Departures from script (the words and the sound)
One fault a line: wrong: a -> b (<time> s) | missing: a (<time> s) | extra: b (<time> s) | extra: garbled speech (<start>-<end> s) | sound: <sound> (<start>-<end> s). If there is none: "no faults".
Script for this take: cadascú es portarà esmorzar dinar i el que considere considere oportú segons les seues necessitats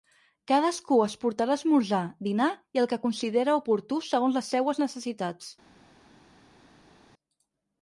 missing: considere (3.6 s)